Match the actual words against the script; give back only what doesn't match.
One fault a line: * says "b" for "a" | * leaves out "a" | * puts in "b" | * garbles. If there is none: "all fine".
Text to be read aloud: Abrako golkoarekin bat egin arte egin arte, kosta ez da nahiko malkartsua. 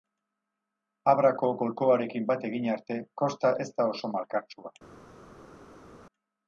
* leaves out "egin arte"
* says "oso" for "nahiko"